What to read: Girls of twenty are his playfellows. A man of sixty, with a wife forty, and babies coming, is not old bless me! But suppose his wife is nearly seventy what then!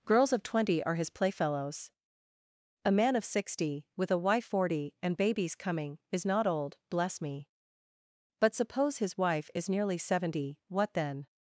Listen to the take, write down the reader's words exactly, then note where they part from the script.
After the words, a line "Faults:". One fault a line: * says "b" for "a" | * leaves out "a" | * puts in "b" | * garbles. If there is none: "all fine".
Girls of twenty are his playfellows. A man of sixty, with a wife forty, and babies coming, is not old bless me! But suppose his wife is nearly seventy what then!
Faults:
all fine